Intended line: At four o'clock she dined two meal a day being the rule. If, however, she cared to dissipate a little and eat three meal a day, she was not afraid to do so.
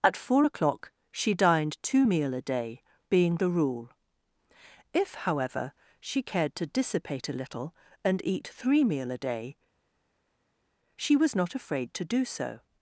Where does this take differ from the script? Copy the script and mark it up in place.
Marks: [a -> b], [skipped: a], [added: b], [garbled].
At four o'clock she dined two meal a day being the rule. If, however, she cared to dissipate a little and eat three meal a day, she was not afraid to do so.